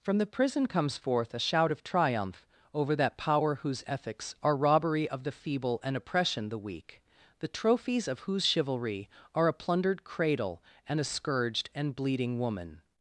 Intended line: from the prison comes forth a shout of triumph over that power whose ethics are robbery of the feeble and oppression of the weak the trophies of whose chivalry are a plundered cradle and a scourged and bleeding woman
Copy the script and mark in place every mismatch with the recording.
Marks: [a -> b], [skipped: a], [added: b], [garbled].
from the prison comes forth a shout of triumph over that power whose ethics are robbery of the feeble and oppression [skipped: of] the weak the trophies of whose chivalry are a plundered cradle and a scourged and bleeding woman